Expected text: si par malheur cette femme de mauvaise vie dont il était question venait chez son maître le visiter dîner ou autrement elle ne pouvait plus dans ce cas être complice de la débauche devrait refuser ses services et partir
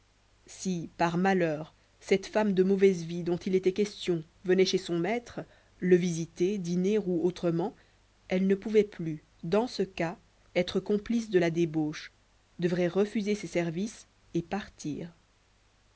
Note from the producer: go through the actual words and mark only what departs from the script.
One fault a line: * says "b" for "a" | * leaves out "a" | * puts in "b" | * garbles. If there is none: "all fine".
all fine